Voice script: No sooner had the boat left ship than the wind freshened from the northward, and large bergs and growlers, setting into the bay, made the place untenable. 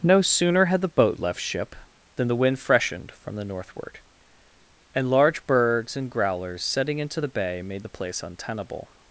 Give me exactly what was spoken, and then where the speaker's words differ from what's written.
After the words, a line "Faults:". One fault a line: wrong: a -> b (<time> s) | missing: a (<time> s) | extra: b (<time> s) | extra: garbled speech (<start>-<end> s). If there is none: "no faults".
No sooner had the boat left ship than the wind freshened from the northward, and large bergs and growlers, setting into the bay, made the place untenable.
Faults:
no faults